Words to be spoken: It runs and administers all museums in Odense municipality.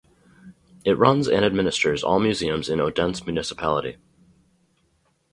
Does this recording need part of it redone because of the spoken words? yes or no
no